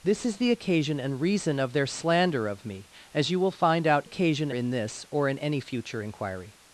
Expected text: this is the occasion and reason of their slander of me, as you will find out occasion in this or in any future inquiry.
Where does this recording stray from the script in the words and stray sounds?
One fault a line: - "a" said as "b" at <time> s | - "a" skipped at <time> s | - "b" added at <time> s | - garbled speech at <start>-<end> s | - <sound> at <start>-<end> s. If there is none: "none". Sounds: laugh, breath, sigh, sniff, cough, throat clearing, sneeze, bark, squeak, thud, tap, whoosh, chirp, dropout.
none